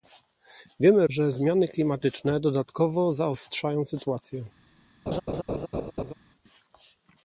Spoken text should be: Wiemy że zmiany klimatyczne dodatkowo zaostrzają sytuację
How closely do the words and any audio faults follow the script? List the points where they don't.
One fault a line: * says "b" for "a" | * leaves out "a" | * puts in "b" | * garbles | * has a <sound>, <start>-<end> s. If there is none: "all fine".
* has a laugh, 5.1-6.1 s